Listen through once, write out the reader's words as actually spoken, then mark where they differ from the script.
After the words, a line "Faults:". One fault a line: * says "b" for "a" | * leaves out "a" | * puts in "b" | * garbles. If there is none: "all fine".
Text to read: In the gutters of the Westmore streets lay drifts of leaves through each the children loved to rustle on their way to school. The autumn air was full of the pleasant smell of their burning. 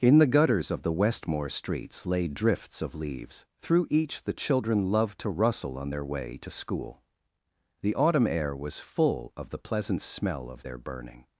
In the gutters of the Westmore streets lay drifts of leaves through each the children loved to rustle on their way to school. The autumn air was full of the pleasant smell of their burning.
Faults:
all fine